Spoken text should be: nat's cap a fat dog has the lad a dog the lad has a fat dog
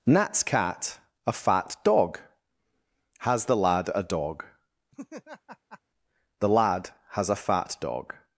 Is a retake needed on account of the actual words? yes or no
yes